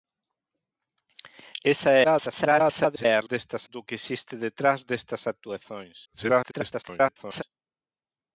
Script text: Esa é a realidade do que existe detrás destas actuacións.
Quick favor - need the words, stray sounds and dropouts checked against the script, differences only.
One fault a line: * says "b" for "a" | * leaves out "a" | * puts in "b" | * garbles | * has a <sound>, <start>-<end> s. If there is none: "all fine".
* garbles
* says "destas" for "realidade"
* garbles